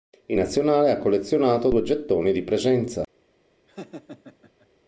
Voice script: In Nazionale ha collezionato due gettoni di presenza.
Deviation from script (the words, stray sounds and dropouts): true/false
true